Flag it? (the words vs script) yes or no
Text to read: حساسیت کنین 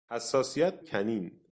no